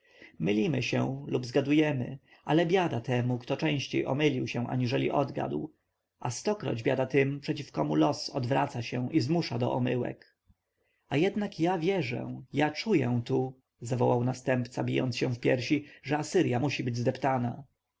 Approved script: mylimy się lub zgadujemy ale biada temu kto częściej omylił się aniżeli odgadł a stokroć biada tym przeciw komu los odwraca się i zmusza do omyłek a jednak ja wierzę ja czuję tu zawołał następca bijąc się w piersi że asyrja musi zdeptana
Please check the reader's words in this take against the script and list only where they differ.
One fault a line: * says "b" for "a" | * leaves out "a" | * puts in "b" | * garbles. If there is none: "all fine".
* puts in "być"